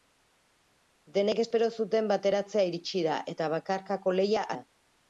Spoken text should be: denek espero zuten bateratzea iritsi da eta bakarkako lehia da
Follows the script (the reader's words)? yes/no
yes